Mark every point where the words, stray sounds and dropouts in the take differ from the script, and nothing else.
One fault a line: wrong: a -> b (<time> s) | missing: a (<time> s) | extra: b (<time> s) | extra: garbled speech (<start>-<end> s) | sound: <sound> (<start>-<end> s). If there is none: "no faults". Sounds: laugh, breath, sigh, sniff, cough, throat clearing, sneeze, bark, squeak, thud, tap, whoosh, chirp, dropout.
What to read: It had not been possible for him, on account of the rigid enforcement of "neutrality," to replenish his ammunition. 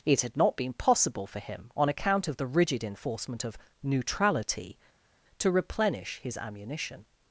no faults